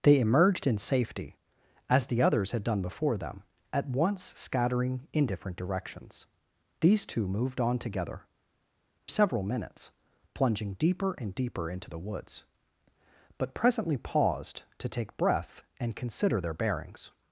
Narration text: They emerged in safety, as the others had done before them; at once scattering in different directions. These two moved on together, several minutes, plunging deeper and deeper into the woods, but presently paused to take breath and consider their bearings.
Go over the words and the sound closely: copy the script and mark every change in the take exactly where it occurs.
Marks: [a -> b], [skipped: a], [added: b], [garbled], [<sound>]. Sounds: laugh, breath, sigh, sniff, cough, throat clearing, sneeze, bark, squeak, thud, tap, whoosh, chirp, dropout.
They emerged in safety, as the others had done before them; at once scattering in different directions. These two moved on together, several minutes, plunging deeper and deeper into the woods, but presently paused to take breath and consider their bearings.